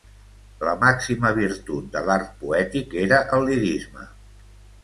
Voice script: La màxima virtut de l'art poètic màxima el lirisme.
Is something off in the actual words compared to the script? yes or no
yes